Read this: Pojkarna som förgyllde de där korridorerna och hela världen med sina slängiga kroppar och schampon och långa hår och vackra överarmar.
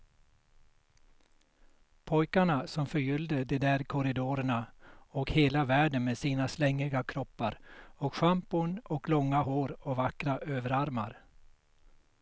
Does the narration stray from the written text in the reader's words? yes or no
no